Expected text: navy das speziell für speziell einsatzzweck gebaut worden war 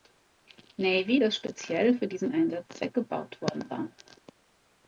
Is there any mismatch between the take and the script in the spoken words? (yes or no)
yes